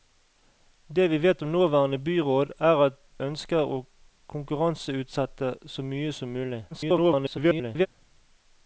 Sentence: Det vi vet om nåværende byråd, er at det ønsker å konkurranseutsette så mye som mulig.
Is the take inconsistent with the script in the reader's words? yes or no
yes